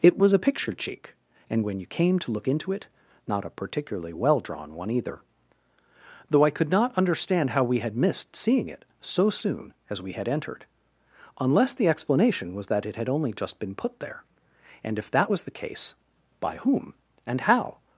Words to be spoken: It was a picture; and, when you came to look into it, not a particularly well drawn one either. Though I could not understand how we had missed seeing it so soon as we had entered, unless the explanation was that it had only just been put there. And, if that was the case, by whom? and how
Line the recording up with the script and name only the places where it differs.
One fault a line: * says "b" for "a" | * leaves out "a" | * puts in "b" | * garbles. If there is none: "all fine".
* puts in "cheek"